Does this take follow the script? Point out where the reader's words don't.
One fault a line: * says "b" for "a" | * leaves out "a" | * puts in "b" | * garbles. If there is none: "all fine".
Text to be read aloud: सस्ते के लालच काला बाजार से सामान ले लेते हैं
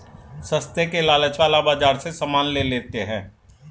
all fine